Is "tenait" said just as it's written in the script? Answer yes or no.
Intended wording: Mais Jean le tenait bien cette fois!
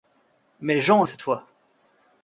no